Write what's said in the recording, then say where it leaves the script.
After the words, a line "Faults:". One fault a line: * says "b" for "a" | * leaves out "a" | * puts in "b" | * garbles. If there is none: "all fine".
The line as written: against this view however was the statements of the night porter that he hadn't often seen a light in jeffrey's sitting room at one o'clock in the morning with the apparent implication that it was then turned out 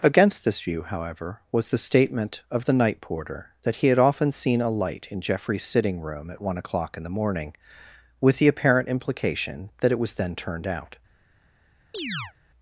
against this view however was the statement of the night porter that he had often seen a light in jeffrey's sitting room at one o'clock in the morning with the apparent implication that it was then turned out
Faults:
* says "statement" for "statements"
* says "had" for "hadn't"